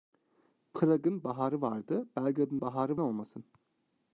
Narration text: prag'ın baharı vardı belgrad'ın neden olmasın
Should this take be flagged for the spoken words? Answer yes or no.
yes